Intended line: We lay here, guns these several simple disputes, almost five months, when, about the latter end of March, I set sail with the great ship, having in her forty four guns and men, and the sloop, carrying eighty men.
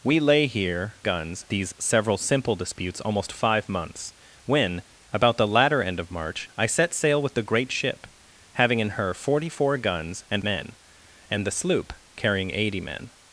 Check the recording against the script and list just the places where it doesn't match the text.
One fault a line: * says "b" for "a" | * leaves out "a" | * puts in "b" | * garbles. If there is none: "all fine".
all fine